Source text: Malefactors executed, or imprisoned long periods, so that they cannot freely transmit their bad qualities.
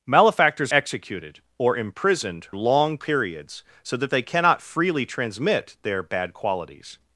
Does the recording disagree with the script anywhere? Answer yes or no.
no